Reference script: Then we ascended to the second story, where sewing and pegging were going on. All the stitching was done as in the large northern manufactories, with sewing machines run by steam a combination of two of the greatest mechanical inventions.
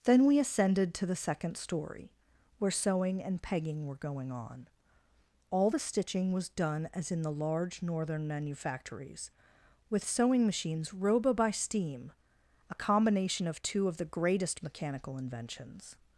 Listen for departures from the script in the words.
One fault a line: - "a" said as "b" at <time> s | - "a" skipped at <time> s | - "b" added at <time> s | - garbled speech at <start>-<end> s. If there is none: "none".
- "run" said as "roba" at 10.9 s